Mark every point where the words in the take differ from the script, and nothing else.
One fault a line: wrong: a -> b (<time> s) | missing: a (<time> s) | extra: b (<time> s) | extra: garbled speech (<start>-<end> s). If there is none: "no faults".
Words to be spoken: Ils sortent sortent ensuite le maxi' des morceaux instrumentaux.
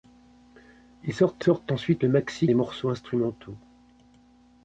no faults